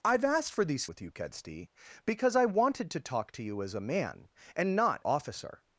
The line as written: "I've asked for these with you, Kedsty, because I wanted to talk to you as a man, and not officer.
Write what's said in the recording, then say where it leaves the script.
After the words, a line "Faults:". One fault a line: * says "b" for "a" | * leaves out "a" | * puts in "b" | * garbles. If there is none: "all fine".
"I've asked for these with you, Kedsty, because I wanted to talk to you as a man, and not officer.
Faults:
all fine